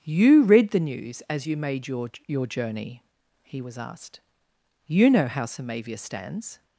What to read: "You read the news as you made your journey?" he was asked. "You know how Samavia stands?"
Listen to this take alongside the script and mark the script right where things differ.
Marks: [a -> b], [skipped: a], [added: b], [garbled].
"You read the news as you made your [added: your] journey?" he was asked. "You know how Samavia stands?"